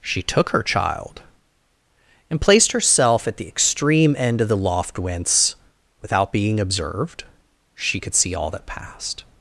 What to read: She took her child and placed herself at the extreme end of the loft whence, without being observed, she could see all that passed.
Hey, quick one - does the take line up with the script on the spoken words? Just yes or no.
yes